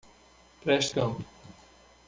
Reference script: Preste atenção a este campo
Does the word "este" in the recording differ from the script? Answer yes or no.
yes